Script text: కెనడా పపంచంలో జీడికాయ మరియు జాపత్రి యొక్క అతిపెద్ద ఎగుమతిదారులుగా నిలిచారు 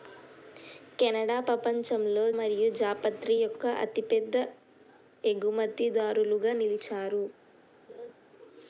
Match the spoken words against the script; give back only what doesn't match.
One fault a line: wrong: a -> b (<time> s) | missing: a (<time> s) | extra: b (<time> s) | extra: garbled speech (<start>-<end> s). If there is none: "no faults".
missing: జీడికాయ (2.2 s)